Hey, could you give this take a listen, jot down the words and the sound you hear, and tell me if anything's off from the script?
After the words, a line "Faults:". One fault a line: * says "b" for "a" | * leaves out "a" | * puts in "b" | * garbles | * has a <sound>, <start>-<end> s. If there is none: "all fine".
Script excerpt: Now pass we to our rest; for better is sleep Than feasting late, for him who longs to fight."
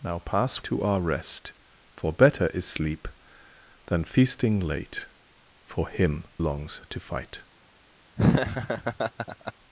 Now pass to our rest; for better is sleep Than feasting late, for him longs to fight."
Faults:
* leaves out "we"
* leaves out "who"
* has a laugh, 8.2-9.5 s